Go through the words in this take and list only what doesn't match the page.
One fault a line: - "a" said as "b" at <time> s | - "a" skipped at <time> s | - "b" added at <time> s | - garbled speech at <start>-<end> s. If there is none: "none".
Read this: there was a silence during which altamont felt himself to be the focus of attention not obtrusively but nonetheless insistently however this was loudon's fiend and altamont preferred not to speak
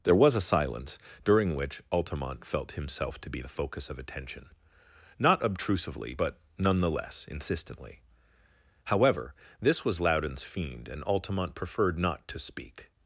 none